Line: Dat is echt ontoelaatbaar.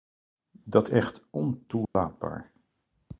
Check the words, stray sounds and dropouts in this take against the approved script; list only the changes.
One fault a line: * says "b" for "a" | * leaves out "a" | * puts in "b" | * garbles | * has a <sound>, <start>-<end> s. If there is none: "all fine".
* leaves out "is"
* has a dropout, 1.8-1.9 s